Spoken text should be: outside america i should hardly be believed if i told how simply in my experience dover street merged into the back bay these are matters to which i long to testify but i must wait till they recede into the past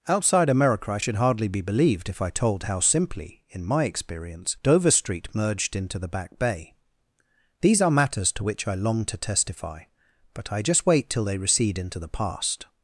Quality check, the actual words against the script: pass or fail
fail